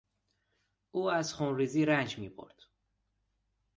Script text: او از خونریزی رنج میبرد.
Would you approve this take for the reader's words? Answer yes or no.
yes